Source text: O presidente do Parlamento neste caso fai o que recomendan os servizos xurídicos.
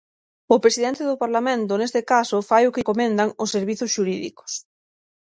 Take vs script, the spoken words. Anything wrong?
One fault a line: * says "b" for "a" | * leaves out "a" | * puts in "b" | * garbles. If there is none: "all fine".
all fine